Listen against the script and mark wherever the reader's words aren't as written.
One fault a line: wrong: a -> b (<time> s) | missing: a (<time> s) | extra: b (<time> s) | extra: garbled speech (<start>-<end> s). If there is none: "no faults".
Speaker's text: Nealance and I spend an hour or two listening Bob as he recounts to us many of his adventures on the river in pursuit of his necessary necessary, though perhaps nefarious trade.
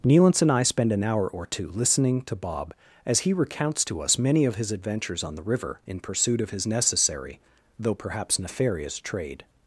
extra: to (2.2 s)
missing: necessary (7.4 s)